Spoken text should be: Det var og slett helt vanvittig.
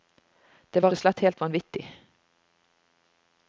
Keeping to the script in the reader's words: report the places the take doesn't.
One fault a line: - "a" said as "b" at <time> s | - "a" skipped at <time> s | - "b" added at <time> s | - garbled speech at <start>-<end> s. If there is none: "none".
none